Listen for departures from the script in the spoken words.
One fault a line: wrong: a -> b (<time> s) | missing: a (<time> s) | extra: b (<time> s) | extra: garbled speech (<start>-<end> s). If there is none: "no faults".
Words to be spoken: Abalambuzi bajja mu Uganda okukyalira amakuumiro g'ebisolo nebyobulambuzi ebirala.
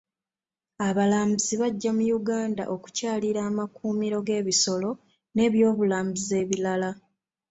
no faults